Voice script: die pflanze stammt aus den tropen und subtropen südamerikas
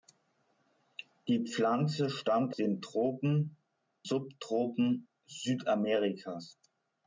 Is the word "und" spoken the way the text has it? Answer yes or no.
no